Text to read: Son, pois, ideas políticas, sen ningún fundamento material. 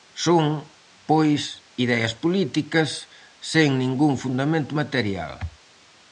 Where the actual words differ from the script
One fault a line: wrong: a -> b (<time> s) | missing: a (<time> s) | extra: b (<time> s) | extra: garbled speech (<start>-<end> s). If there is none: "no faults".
no faults